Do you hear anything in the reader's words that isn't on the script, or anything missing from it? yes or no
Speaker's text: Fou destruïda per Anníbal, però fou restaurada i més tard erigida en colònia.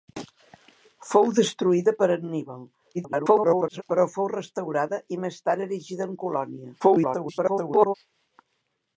yes